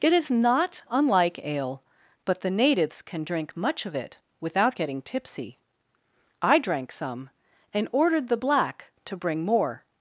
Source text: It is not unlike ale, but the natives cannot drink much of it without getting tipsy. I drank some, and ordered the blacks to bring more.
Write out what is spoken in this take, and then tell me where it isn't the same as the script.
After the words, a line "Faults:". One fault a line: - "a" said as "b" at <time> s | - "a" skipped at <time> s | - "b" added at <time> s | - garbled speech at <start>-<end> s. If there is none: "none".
It is not unlike ale, but the natives can drink much of it without getting tipsy. I drank some, and ordered the black to bring more.
Faults:
- "cannot" said as "can" at 3.0 s
- "blacks" said as "black" at 8.3 s